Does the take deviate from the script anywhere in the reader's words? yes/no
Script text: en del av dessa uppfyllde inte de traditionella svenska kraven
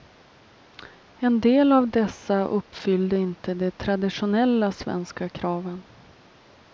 no